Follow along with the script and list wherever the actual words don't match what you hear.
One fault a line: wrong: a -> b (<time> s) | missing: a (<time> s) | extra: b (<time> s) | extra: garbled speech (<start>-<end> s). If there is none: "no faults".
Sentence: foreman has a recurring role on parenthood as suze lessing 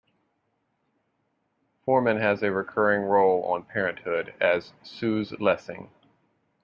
no faults